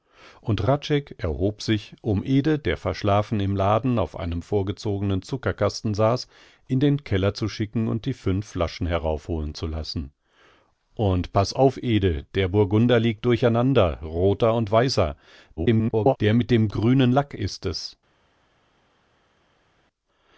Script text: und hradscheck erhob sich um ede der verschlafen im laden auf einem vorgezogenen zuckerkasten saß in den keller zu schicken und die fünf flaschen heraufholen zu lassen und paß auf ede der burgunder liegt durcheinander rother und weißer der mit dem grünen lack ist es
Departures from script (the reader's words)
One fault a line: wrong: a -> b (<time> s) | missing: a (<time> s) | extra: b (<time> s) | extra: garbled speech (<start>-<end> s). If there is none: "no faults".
extra: garbled speech (15.6-16.2 s)